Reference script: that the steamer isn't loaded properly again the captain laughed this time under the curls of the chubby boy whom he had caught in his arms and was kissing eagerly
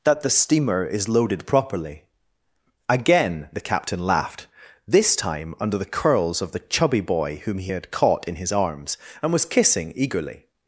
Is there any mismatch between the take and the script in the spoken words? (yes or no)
yes